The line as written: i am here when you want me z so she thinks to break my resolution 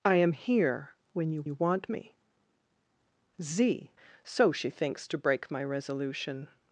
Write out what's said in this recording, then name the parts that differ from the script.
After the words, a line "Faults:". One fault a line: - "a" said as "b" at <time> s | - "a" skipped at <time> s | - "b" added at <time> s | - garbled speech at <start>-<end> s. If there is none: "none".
i am here when you you want me z so she thinks to break my resolution
Faults:
- "you" added at 1.4 s